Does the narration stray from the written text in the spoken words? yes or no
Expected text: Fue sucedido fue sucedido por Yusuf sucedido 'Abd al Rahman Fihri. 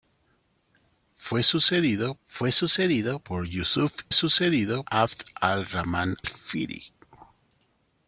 no